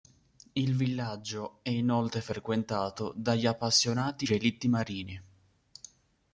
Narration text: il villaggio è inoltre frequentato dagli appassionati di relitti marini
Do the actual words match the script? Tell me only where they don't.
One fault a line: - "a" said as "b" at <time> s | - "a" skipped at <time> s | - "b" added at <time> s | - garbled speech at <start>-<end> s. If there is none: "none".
- "di" skipped at 4.2 s